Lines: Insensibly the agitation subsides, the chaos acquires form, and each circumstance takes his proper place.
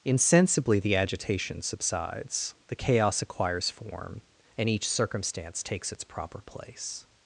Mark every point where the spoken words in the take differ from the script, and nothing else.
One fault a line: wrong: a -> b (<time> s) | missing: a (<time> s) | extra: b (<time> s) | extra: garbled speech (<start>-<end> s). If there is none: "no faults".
wrong: his -> its (5.9 s)